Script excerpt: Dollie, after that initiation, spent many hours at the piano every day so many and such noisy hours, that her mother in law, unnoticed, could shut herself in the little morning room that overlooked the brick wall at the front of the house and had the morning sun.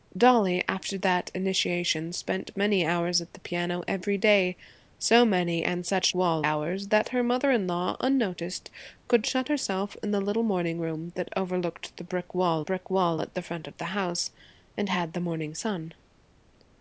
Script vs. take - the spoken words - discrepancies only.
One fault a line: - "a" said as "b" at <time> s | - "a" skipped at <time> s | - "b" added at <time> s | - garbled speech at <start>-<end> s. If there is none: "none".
- "noisy" said as "wall" at 6.1 s
- "brick wall" added at 12.6 s